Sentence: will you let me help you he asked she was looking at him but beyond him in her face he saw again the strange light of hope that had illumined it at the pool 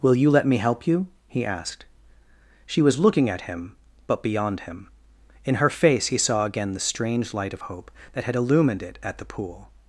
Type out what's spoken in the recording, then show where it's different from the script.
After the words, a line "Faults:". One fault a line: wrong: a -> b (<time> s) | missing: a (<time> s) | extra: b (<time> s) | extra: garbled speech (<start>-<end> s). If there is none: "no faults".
will you let me help you he asked she was looking at him but beyond him in her face he saw again the strange light of hope that had illumined it at the pool
Faults:
no faults